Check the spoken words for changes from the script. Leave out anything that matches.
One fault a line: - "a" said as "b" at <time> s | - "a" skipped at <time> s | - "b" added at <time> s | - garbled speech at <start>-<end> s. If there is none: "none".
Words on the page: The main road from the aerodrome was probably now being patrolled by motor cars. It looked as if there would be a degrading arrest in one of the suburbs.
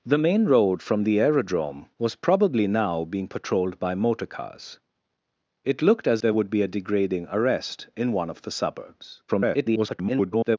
- "if" skipped at 6.2 s
- garbled speech at 9.3-10.6 s